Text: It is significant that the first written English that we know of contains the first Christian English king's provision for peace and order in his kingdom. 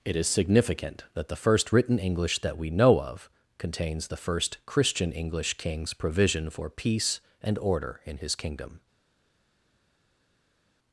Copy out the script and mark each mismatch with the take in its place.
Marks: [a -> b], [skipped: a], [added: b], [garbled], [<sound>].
It is significant that the first written English that we know of contains the first Christian English king's provision for peace and order in his kingdom.